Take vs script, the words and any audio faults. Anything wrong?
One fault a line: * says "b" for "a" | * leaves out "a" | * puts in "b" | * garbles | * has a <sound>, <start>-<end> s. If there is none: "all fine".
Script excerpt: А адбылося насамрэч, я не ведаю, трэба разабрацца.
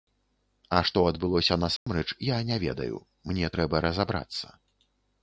* puts in "што"
* has a dropout, 1.8-1.9 s
* puts in "мне"